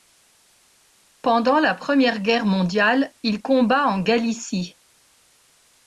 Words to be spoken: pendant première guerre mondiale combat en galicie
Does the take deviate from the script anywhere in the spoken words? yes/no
yes